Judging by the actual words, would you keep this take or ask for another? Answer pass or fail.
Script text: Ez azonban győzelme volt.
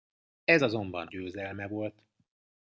pass